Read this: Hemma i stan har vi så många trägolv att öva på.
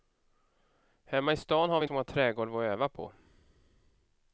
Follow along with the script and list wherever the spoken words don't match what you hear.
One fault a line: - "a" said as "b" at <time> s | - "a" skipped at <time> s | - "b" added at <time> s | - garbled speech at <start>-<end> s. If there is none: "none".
none